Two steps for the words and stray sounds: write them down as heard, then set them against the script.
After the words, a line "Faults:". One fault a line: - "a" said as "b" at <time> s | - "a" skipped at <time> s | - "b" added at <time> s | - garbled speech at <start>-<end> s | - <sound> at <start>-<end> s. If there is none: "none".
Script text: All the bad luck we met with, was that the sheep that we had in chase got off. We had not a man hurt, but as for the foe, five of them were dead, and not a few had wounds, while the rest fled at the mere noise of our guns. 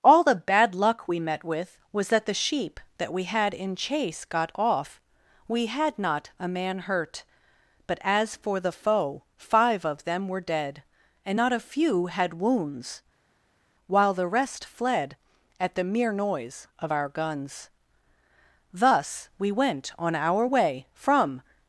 All the bad luck we met with, was that the sheep that we had in chase got off. We had not a man hurt, but as for the foe, five of them were dead, and not a few had wounds, while the rest fled at the mere noise of our guns. Thus we went on our way from
Faults:
- "Thus we went on our way from" added at 18.7 s